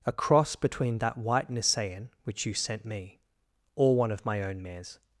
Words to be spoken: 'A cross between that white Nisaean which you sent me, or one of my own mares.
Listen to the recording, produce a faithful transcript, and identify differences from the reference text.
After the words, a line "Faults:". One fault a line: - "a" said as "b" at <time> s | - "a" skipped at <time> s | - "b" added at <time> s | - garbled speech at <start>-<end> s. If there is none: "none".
'A cross between that white Nisaean which you sent me, or one of my own mares.
Faults:
none